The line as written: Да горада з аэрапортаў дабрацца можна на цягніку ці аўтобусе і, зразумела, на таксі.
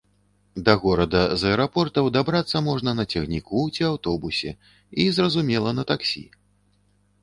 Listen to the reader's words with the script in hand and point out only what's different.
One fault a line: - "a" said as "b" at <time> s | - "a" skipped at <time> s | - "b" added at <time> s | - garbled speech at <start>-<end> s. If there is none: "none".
none